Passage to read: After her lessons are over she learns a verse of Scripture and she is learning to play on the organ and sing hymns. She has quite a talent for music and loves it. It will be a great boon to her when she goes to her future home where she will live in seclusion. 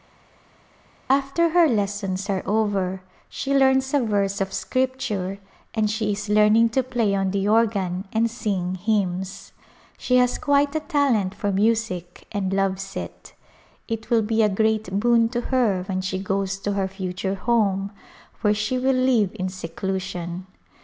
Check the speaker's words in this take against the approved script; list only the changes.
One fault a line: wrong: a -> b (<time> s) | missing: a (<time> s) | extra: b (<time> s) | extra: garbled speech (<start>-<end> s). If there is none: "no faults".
no faults